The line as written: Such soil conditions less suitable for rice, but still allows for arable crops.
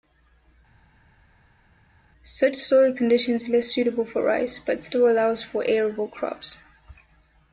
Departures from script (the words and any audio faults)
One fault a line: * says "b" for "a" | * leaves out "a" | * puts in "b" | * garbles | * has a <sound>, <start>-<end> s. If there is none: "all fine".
all fine